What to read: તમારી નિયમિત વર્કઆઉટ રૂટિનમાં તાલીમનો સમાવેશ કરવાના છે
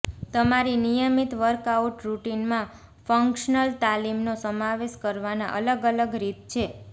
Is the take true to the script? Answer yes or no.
no